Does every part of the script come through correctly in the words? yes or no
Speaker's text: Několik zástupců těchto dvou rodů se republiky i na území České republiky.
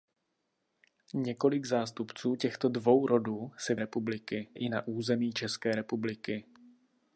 yes